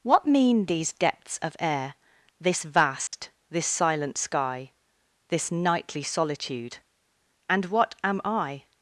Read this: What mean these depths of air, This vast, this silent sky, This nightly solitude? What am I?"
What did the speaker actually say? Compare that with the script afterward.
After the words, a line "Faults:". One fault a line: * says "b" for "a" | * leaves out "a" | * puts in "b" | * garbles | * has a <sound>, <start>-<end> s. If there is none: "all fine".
What mean these depths of air, This vast, this silent sky, This nightly solitude? And what am I?"
Faults:
* has a dropout, 3.1-3.1 s
* puts in "And"